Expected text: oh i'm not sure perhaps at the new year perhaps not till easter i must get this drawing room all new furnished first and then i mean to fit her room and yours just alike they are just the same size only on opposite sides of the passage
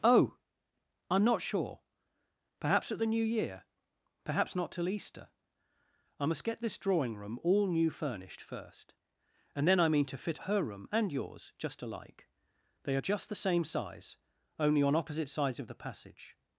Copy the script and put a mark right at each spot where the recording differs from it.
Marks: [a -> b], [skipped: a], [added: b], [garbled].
oh i'm not sure perhaps at the new year perhaps not till easter i must get this drawing room all new furnished first and then i mean to fit her room and yours just alike they are just the same size only on opposite sides of the passage